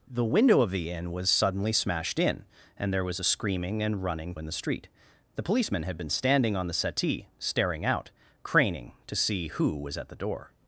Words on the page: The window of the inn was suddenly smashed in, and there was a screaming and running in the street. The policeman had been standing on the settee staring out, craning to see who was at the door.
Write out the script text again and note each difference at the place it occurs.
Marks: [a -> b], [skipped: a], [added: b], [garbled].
The window of the inn was suddenly smashed in, and there was a screaming and running in the street. The policeman had been standing on the settee staring out, craning to see who was at the door.